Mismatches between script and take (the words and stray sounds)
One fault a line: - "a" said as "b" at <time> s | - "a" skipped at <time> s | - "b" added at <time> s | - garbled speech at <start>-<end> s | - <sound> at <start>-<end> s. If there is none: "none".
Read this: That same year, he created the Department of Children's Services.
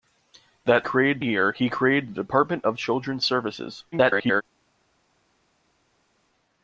- "same" said as "created" at 0.8 s
- garbled speech at 3.9-4.4 s